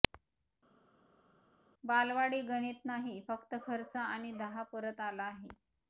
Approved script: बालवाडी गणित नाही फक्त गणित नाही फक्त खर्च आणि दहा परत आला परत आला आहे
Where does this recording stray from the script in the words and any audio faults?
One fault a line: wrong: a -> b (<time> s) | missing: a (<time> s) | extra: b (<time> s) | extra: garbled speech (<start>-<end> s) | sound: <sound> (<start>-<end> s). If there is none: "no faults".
missing: गणित नाही फक्त (3.5 s)
missing: परत आला (5.2 s)